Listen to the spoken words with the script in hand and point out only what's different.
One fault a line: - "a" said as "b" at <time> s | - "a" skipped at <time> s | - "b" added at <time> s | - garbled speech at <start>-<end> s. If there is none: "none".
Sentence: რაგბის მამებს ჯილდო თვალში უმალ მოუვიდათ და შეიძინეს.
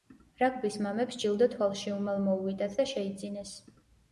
none